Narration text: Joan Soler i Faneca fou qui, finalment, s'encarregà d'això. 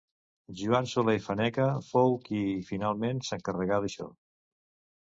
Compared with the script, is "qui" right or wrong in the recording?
right